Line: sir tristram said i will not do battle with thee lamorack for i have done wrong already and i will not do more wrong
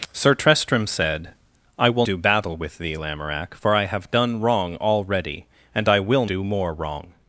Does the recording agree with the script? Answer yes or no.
no